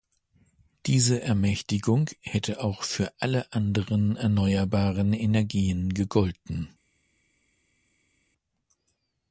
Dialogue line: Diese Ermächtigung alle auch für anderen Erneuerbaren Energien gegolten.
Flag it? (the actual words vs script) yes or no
yes